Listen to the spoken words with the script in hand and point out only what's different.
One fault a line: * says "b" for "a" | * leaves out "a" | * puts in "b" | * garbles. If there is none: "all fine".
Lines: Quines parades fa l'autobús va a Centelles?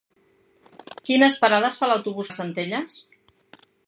all fine